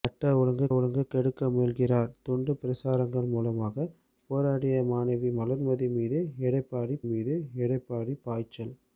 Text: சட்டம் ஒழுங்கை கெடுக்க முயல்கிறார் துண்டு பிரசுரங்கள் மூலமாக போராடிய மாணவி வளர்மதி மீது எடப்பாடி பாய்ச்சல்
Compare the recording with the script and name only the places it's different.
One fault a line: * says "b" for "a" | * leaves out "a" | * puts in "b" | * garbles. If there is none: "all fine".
* puts in "ஒழுங்கை"
* puts in "மீது எடப்பாடி"